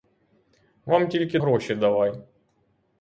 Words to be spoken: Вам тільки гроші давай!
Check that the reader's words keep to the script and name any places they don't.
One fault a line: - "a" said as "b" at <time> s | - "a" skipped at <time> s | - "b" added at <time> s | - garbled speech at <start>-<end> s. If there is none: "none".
none